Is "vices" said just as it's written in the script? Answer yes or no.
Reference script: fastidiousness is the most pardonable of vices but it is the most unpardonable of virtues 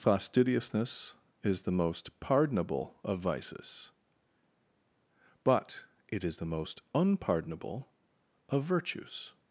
yes